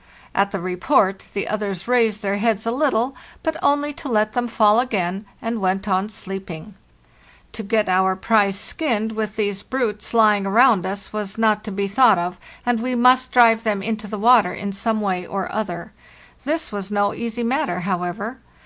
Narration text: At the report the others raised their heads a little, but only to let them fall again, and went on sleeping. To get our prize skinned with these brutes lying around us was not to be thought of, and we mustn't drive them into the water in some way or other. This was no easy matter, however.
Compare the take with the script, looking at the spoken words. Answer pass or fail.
fail